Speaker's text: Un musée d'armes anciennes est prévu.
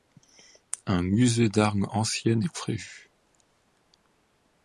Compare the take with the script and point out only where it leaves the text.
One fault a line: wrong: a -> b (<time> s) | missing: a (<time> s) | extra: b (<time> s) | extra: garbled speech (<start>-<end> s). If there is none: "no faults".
no faults